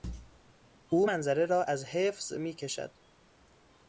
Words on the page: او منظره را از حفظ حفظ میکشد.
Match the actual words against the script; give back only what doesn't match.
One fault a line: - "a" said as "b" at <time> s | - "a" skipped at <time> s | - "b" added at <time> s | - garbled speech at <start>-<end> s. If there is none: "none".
- "حفظ" skipped at 2.3 s